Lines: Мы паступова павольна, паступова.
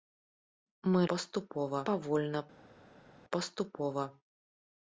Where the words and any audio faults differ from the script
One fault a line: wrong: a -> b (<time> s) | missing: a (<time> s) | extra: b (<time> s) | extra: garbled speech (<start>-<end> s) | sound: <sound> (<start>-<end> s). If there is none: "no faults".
no faults